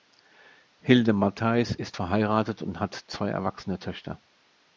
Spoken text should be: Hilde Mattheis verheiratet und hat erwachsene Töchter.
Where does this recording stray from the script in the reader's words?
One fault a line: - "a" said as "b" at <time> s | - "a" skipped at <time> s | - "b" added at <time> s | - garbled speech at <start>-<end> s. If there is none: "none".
- "ist" added at 1.7 s
- "zwei" added at 2.9 s